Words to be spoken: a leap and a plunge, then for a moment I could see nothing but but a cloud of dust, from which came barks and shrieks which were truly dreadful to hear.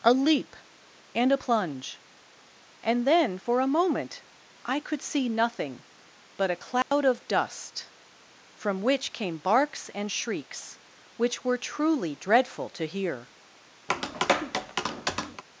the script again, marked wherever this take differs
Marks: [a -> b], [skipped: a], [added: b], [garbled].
a leap and a plunge, [added: and] then for a moment I could see nothing but [skipped: but] a cloud of dust, from which came barks and shrieks which were truly dreadful to hear.